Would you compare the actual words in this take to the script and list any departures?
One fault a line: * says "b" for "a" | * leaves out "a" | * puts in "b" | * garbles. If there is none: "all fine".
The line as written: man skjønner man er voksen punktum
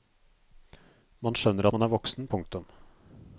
all fine